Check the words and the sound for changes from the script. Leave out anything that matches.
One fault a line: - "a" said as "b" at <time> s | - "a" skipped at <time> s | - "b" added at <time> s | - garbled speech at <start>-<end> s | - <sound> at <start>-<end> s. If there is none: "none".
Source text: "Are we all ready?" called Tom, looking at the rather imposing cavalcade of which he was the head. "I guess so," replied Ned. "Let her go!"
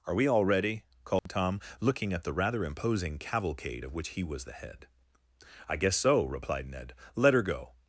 - dropout at 1.2-1.3 s